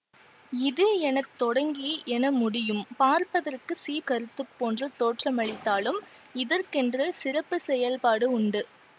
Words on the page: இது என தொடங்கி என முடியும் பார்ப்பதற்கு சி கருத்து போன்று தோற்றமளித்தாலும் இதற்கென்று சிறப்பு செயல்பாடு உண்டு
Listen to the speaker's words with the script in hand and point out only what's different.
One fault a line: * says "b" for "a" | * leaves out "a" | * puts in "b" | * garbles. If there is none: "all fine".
all fine